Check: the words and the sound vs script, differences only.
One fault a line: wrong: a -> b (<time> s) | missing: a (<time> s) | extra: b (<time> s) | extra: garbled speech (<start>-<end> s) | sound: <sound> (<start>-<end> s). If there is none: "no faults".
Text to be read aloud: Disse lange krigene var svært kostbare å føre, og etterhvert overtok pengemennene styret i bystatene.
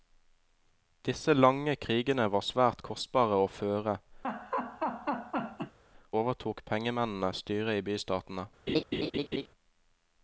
missing: og etterhvert (4.0 s)
sound: laugh (4.2-5.8 s)
sound: laugh (8.7-9.5 s)